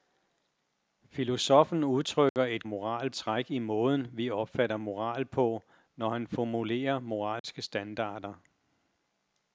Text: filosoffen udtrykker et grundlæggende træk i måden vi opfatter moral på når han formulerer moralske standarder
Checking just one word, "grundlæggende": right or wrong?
wrong